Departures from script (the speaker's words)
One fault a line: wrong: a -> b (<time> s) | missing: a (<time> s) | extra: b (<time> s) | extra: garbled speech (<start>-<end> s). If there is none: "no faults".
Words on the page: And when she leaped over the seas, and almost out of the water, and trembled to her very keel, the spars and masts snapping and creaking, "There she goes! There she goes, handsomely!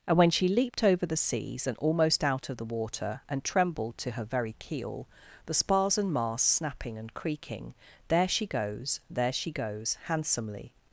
no faults